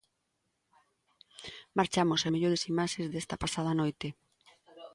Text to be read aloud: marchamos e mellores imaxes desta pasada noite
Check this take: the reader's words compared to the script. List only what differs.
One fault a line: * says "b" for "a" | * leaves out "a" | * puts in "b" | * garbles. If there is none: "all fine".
all fine